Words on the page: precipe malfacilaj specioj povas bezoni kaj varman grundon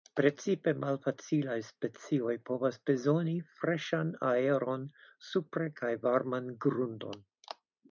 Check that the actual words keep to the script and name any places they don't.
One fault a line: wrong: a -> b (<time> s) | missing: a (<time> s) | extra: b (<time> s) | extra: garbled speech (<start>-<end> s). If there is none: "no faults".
extra: freŝan aeron supre (3.6 s)